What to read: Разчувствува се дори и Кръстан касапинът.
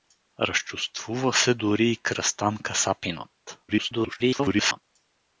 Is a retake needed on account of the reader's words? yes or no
yes